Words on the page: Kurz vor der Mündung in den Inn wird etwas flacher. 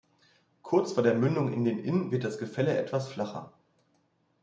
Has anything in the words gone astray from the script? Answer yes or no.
yes